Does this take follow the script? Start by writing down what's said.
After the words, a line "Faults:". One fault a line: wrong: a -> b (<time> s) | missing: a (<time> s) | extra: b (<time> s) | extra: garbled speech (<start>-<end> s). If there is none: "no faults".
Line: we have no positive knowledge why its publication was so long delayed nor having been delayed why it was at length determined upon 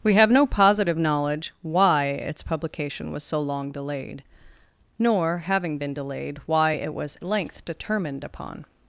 we have no positive knowledge why its publication was so long delayed nor having been delayed why it was length determined upon
Faults:
missing: at (7.2 s)